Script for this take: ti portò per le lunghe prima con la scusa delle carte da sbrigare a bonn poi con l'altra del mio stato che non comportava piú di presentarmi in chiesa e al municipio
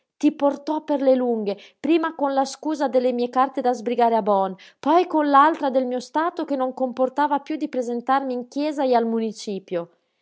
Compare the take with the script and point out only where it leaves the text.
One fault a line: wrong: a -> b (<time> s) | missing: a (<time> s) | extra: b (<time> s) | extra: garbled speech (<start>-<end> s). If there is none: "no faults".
extra: mie (3.1 s)